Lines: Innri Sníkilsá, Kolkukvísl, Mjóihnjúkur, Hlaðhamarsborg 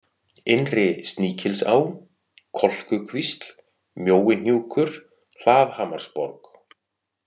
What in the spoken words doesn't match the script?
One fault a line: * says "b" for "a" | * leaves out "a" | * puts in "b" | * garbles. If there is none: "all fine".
all fine